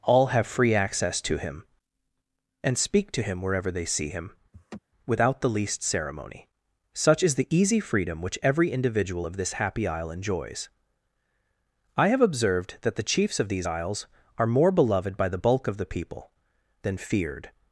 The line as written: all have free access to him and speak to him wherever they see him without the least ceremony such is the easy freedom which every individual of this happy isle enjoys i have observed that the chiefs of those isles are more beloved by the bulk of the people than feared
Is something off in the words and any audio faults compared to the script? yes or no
yes